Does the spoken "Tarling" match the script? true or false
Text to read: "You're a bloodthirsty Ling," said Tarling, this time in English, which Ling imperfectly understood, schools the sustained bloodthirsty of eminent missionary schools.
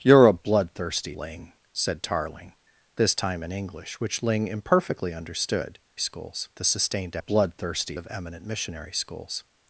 true